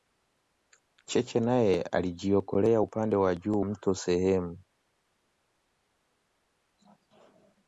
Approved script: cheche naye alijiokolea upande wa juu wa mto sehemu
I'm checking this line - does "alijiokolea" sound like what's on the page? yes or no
yes